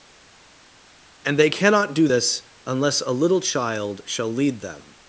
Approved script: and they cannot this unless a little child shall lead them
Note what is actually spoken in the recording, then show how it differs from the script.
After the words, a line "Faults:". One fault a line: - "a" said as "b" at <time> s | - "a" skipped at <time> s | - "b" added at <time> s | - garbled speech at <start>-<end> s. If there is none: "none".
and they cannot do this unless a little child shall lead them
Faults:
- "do" added at 1.9 s